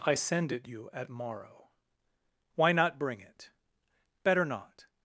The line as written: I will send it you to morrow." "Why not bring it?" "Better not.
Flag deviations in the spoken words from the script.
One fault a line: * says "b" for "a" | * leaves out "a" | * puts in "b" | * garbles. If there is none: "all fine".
* leaves out "will"
* says "at" for "to"